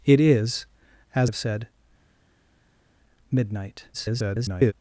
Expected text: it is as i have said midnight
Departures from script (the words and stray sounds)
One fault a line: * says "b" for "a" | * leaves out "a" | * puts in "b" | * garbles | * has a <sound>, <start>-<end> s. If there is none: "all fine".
* leaves out "i"
* garbles